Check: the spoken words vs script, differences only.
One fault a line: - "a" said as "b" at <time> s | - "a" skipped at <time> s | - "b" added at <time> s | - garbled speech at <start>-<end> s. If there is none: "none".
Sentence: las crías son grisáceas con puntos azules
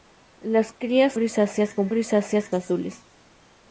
- "son" skipped at 1.1 s
- "puntos" said as "grisáceas" at 1.9 s